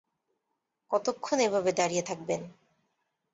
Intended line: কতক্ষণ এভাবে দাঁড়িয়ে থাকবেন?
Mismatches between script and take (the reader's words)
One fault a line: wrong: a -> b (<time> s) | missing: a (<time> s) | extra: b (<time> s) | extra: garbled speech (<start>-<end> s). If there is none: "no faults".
no faults